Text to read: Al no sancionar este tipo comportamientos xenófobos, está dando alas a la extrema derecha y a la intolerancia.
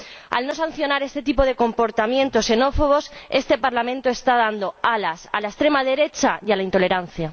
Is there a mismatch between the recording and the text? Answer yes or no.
yes